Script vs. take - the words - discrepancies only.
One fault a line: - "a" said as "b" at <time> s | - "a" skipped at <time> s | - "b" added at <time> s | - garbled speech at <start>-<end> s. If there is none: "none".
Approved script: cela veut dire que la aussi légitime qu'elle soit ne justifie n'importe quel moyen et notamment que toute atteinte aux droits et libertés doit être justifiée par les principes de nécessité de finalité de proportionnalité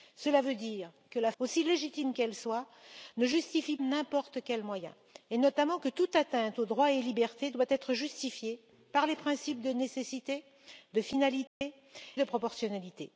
none